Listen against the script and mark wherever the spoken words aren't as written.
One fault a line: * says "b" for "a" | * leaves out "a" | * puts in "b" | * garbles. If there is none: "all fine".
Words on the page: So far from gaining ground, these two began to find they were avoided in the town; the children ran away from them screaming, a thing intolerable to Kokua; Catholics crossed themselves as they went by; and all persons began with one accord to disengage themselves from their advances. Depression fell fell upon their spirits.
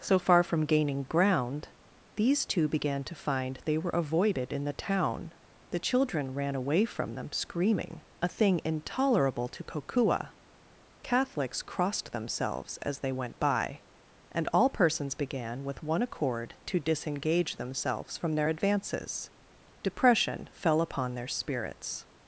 * leaves out "fell"